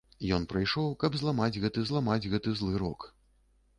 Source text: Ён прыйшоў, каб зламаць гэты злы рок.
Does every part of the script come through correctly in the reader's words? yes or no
no